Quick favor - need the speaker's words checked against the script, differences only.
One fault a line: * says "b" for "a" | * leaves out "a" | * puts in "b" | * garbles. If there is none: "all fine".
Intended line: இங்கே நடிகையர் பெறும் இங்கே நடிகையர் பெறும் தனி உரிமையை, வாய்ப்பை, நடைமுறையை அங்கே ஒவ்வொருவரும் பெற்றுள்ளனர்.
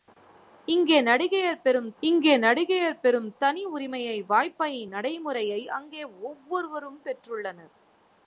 all fine